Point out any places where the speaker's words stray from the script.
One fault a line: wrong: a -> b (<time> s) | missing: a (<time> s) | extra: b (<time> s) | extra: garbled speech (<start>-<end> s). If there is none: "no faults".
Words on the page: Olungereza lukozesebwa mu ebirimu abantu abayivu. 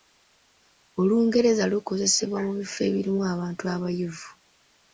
extra: bifo (2.6 s)